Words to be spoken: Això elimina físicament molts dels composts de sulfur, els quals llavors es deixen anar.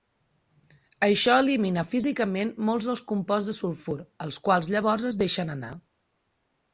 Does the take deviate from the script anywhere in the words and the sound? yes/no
no